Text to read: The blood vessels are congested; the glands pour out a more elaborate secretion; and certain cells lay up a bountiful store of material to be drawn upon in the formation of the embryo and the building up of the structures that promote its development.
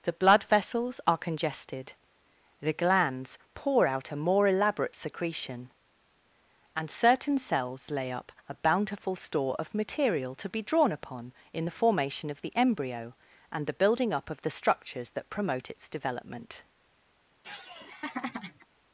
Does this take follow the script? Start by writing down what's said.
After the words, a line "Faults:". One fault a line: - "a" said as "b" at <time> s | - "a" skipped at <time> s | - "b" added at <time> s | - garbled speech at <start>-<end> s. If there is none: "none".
The blood vessels are congested; the glands pour out a more elaborate secretion; and certain cells lay up a bountiful store of material to be drawn upon in the formation of the embryo and the building up of the structures that promote its development.
Faults:
none